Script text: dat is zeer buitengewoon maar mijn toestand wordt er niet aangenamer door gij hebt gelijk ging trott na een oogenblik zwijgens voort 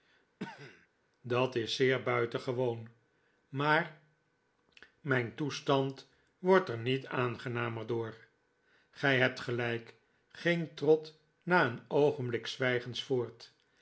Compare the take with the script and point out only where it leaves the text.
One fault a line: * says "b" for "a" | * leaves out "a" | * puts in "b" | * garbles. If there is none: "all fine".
all fine